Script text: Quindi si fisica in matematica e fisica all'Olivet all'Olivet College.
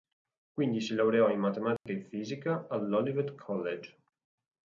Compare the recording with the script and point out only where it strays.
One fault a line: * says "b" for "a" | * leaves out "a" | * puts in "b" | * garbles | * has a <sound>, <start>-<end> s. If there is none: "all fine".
* says "laureò" for "fisica"
* has a dropout, 1.8-1.9 s
* leaves out "all'Olivet"